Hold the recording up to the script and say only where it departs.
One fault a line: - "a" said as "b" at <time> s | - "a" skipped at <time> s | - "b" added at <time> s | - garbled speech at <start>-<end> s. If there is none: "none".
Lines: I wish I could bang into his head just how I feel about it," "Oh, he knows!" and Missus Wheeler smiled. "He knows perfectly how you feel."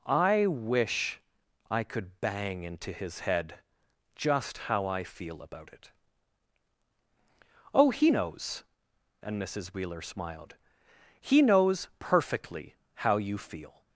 none